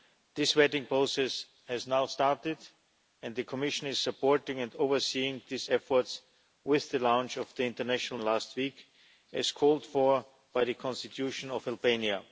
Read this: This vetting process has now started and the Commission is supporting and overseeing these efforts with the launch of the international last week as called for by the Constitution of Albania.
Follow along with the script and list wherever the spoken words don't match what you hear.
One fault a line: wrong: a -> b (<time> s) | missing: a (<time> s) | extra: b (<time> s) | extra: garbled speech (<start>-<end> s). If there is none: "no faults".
no faults